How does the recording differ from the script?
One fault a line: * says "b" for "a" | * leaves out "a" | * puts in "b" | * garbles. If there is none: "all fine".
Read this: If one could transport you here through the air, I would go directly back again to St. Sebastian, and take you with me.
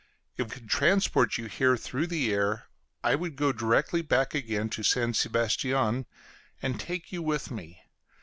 * leaves out "one"